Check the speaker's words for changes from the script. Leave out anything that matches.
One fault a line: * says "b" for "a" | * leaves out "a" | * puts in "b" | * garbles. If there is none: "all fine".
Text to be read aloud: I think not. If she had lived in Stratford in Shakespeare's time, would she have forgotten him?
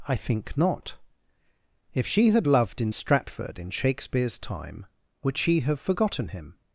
* says "loved" for "lived"